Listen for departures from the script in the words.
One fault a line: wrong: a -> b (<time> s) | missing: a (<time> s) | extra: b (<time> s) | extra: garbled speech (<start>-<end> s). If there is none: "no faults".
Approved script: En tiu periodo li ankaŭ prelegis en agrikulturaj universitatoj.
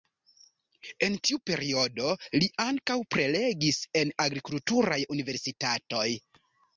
no faults